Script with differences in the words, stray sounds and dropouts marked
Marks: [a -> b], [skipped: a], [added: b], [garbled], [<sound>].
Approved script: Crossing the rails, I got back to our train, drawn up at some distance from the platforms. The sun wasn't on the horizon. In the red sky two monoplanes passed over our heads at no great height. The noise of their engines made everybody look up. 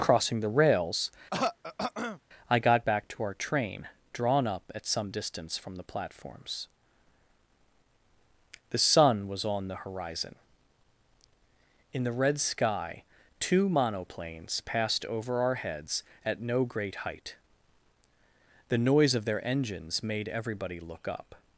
Crossing the rails, [throat clearing] I got back to our train, drawn up at some distance from the platforms. The sun [wasn't -> was] on the horizon. In the red sky two monoplanes passed over our heads at no great height. The noise of their engines made everybody look up.